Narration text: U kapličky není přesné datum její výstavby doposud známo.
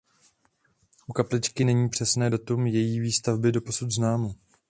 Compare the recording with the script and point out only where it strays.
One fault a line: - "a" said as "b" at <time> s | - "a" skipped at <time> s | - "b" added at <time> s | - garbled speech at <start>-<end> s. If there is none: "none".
none